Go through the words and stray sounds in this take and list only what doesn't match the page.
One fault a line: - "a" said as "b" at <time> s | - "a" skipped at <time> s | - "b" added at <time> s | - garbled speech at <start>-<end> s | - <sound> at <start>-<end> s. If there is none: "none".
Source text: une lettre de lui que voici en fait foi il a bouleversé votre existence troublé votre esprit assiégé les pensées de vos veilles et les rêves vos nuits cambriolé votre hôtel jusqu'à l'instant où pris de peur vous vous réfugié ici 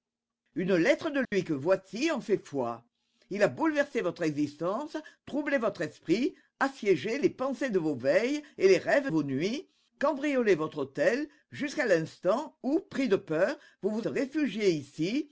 - dropout at 1.2-1.3 s